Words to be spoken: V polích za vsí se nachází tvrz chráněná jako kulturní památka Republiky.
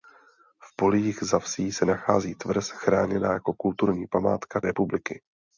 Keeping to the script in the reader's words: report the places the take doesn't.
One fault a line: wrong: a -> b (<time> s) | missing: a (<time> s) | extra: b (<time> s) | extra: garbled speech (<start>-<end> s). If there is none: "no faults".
no faults